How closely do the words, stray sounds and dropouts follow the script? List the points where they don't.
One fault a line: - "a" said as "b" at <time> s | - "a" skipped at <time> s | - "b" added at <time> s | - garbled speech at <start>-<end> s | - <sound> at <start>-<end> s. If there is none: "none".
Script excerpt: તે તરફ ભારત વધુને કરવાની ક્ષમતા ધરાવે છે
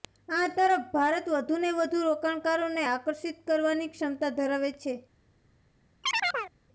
- "તે" said as "આ" at 0.3 s
- "વધુ રોકાણકારોને આકર્ષિત" added at 1.8 s
- chirp at 6.0-6.5 s